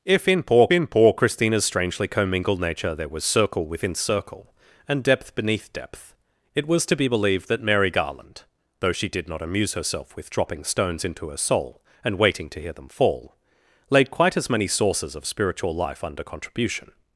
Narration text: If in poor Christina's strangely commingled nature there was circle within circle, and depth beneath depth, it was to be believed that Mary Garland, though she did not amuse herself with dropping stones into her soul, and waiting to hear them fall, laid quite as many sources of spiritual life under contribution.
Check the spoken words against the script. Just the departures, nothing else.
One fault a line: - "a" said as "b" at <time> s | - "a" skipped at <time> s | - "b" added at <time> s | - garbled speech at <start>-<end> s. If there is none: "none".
- "in poor" added at 0.7 s